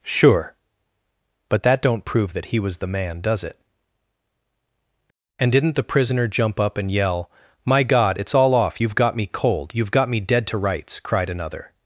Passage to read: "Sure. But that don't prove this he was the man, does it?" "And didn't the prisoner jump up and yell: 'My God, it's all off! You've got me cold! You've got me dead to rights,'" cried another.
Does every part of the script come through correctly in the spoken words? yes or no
no